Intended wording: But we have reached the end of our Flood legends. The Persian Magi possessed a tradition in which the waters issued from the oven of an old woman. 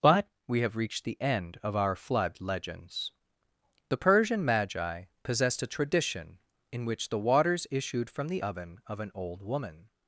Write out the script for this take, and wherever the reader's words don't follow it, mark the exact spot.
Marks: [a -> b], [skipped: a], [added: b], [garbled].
But we have reached the end of our Flood legends. The Persian Magi possessed a tradition in which the waters issued from the oven of an old woman.